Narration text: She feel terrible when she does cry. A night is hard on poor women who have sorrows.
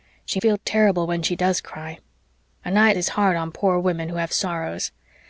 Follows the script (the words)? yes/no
yes